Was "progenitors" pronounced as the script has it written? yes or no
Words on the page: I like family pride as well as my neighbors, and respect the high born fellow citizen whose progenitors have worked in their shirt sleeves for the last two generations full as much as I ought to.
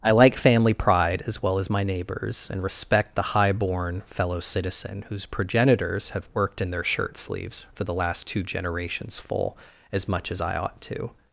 yes